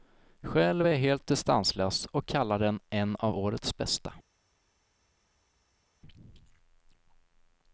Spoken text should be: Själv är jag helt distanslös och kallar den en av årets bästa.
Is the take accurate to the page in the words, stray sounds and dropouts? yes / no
yes